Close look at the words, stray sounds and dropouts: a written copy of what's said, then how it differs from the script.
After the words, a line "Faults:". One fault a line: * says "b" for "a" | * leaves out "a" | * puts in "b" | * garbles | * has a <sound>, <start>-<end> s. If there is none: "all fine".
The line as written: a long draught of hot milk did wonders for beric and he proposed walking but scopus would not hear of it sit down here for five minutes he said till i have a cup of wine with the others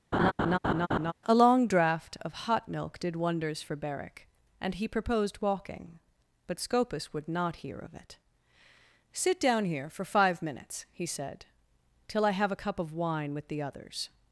a long draught of hot milk did wonders for beric and he proposed walking but scopus would not hear of it sit down here for five minutes he said till i have a cup of wine with the others
Faults:
* has a laugh, 0.1-1.1 s